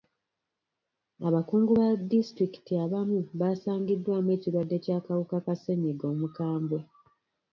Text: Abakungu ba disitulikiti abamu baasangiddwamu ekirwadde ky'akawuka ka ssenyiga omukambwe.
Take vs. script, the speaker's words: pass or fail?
pass